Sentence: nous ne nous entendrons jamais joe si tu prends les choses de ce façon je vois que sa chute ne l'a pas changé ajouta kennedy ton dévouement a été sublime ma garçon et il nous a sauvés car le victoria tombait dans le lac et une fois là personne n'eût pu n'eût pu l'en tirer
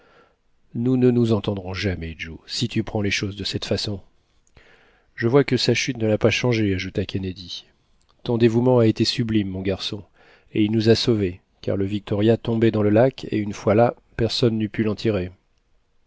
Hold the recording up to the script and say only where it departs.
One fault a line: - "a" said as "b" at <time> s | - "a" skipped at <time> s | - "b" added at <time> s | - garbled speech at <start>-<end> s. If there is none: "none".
- "ce" said as "cette" at 3.4 s
- "ma" said as "mon" at 9.5 s
- "n'eût pu" skipped at 14.8 s